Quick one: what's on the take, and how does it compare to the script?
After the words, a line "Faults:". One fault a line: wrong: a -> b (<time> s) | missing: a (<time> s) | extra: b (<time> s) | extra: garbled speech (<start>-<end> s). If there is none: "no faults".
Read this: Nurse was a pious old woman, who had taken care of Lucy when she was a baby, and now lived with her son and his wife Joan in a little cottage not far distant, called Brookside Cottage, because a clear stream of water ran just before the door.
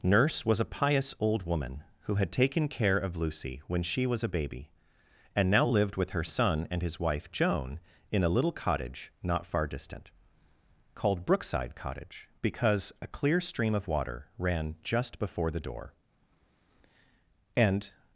Nurse was a pious old woman, who had taken care of Lucy when she was a baby, and now lived with her son and his wife Joan in a little cottage not far distant, called Brookside Cottage, because a clear stream of water ran just before the door. "And
Faults:
extra: And (17.6 s)